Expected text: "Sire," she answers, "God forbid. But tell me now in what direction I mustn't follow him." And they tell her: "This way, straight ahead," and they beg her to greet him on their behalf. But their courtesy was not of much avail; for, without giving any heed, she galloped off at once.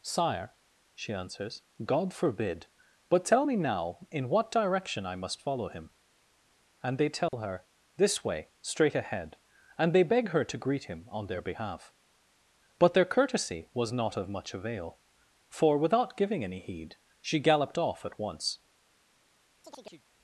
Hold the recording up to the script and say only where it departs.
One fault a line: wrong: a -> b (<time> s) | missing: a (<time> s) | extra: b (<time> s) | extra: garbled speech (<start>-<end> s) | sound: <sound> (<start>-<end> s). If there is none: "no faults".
wrong: mustn't -> must (5.2 s)
sound: dropout (7.3-7.3 s)
sound: chirp (19.6-20.1 s)